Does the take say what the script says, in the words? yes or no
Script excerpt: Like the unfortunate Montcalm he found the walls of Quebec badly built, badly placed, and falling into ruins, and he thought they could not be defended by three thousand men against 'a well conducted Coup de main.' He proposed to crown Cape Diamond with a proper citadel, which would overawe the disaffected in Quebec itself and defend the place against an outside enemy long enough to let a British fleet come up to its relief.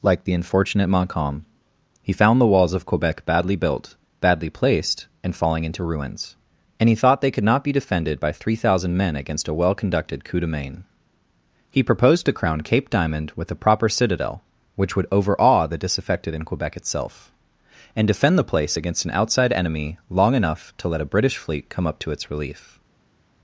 yes